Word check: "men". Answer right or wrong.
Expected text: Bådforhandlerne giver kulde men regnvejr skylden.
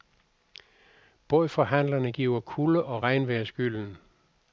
wrong